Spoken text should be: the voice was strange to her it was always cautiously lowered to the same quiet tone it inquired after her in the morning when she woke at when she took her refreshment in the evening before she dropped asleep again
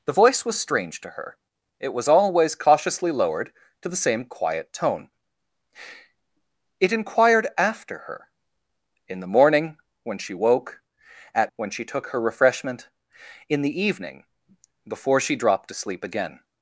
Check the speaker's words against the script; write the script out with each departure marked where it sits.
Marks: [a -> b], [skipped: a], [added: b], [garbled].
the voice was strange to her it was always cautiously lowered to the same quiet tone it inquired after her in the morning when she woke at when she took her refreshment in the evening before she dropped asleep again